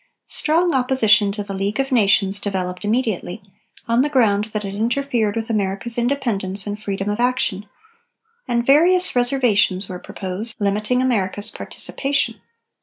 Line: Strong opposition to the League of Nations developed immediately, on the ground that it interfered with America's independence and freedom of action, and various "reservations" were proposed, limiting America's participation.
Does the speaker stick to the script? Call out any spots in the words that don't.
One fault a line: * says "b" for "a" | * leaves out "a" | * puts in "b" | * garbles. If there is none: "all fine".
all fine